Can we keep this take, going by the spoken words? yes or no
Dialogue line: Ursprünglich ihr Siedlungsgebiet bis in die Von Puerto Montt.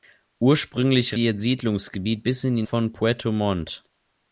yes